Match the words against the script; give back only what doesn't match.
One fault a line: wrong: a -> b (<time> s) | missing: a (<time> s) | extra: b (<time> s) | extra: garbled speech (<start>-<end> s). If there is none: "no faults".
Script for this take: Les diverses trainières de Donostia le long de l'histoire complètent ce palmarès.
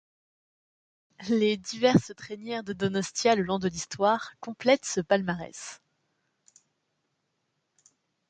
no faults